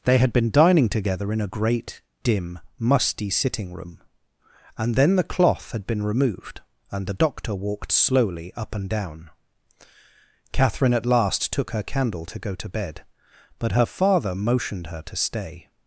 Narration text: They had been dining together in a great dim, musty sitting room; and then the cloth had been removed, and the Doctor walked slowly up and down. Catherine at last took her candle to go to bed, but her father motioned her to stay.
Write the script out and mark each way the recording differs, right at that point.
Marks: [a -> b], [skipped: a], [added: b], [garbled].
They had been dining together in a great dim, musty sitting room; and then the cloth had been removed, and the Doctor walked slowly up and down. Catherine at last took her candle to go to bed, but her father motioned her to stay.